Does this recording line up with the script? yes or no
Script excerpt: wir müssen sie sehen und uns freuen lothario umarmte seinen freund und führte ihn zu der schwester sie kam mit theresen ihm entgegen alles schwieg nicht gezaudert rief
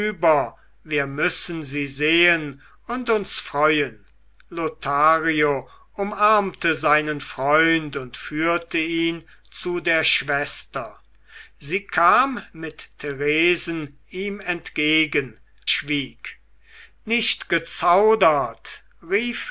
no